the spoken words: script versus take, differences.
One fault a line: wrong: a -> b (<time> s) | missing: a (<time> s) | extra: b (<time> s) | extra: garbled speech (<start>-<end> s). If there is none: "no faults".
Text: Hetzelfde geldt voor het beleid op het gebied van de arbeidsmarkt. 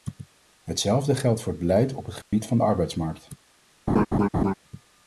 no faults